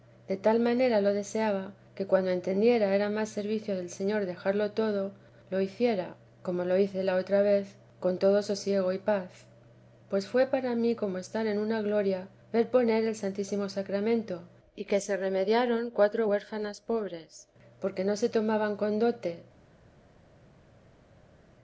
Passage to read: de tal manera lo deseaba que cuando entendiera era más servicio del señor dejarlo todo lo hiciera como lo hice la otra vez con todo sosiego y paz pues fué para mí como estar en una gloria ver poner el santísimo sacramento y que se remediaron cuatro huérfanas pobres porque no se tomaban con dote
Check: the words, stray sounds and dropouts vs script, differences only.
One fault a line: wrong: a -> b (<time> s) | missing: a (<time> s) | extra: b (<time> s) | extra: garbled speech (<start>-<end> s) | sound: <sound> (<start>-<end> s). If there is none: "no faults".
no faults